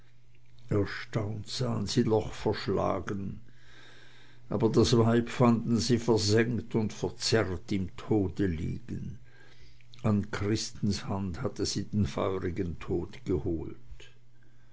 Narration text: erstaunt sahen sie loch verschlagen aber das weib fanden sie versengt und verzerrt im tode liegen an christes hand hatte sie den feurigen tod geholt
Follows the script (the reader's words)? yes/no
yes